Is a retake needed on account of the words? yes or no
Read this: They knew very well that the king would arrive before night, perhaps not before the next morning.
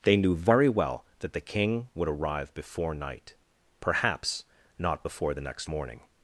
no